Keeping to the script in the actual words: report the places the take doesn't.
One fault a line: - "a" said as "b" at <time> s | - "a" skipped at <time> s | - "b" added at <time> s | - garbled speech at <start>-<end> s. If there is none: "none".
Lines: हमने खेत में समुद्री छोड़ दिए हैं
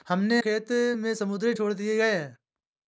none